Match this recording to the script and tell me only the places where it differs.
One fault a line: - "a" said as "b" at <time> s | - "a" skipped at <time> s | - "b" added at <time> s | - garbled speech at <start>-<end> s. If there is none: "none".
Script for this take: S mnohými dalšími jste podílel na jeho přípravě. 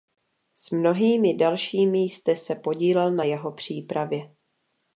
- "se" added at 2.4 s